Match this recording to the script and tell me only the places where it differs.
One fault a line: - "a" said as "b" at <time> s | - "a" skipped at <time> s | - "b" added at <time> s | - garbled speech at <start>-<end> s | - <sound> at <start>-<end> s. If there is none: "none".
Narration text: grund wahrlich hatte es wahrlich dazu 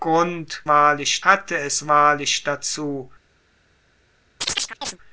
- chirp at 4.4-5.0 s